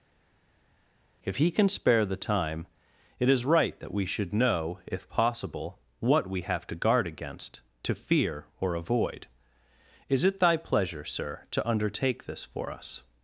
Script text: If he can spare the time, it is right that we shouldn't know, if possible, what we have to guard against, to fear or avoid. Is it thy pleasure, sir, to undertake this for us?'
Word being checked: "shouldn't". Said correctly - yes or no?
no